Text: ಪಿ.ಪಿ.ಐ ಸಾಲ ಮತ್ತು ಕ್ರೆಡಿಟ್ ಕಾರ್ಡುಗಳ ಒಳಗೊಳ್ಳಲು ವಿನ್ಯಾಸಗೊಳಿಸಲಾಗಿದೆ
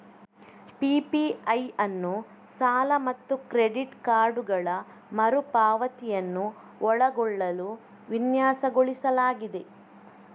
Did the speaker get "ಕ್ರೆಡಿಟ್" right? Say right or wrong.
right